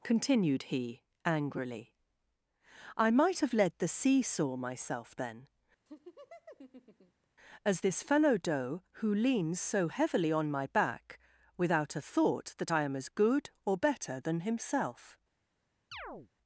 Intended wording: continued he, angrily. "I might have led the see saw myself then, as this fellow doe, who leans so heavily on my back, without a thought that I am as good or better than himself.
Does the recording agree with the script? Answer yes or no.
yes